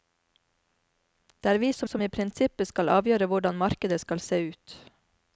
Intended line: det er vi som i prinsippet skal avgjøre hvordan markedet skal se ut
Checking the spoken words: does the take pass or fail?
fail